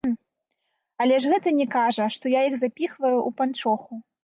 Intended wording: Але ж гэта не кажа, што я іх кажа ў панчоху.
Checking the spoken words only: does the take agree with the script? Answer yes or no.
no